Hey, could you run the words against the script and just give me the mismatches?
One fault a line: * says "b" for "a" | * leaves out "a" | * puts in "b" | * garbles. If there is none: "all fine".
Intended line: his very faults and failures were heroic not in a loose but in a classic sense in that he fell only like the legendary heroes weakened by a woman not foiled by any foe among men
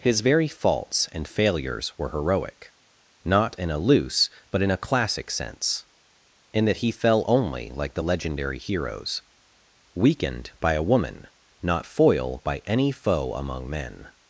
* says "foil" for "foiled"